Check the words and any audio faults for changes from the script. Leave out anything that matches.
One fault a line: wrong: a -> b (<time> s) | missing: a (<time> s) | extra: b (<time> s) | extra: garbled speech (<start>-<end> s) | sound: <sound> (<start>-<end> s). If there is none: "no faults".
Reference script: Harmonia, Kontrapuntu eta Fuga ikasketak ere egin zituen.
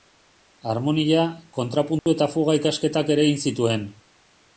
sound: dropout (2.0-2.1 s)